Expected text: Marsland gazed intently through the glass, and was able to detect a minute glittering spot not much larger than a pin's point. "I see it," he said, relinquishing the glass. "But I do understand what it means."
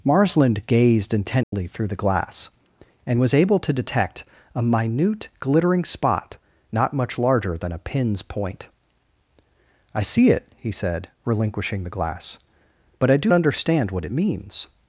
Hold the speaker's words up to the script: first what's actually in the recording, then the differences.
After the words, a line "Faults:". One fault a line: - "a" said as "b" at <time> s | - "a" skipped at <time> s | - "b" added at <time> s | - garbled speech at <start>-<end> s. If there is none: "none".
Marsland gazed intently through the glass, and was able to detect a minute glittering spot not much larger than a pin's point. "I see it," he said, relinquishing the glass. "But I do understand what it means."
Faults:
none